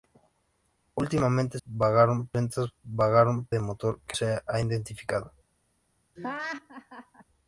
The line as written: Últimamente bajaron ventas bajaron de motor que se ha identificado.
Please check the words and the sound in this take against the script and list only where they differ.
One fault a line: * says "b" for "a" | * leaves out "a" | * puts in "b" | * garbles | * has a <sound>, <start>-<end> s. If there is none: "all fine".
* has a laugh, 6.2-7.2 s